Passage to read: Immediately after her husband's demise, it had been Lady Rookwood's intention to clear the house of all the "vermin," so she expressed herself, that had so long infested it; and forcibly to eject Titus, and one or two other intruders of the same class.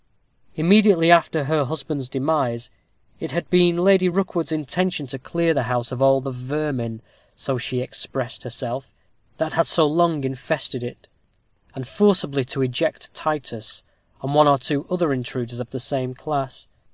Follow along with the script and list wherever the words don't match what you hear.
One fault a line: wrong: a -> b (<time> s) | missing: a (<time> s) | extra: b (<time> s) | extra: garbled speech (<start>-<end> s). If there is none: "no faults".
no faults